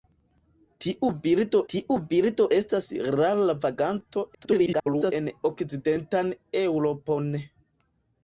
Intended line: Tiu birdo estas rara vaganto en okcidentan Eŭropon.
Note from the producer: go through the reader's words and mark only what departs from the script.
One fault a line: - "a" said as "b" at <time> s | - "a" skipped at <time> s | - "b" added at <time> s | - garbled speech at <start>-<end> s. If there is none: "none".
- "tiu birdo" added at 1.7 s
- garbled speech at 4.3-5.1 s